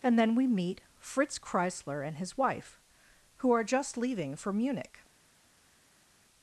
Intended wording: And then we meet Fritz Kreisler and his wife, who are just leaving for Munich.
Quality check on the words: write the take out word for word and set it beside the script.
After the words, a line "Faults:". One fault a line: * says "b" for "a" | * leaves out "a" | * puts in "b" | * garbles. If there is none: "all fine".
And then we meet Fritz Kreisler and his wife, who are just leaving for Munich.
Faults:
all fine